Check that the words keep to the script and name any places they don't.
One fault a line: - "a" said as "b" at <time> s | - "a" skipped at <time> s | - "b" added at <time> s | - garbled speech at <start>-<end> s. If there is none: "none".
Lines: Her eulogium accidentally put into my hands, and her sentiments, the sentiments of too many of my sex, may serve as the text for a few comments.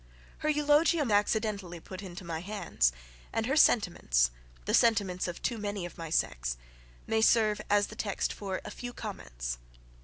none